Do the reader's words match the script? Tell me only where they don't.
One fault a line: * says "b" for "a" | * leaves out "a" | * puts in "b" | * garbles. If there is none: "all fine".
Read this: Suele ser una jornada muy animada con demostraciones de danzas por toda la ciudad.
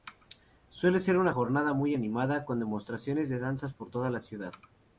all fine